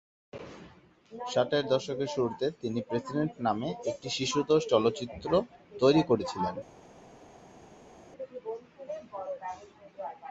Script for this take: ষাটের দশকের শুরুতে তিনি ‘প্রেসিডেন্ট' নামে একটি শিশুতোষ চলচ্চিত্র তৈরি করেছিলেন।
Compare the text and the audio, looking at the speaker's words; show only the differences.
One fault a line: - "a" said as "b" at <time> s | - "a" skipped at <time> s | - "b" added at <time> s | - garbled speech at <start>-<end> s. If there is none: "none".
none